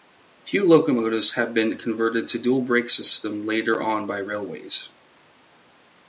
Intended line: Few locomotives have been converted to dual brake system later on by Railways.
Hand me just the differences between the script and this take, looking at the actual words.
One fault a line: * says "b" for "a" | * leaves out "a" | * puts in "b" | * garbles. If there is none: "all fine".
all fine